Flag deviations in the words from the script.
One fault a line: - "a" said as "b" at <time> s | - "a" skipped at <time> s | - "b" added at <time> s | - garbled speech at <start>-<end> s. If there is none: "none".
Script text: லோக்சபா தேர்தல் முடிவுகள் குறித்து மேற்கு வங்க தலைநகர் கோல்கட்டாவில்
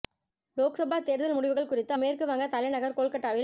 none